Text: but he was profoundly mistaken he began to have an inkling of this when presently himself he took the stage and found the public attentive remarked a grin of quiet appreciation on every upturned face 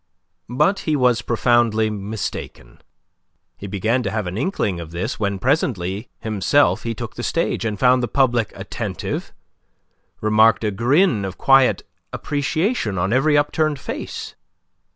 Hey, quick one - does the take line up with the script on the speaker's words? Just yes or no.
yes